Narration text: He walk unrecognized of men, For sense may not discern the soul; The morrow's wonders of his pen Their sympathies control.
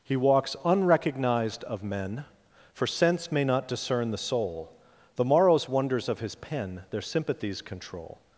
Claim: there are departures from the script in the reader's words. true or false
true